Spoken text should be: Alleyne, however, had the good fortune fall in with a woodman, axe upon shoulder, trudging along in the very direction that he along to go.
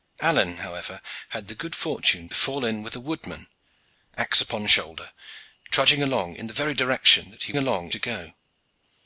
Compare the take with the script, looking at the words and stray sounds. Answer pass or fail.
pass